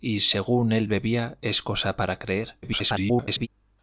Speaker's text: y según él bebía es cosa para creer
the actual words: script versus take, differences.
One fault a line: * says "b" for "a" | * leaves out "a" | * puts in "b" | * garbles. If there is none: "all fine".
* garbles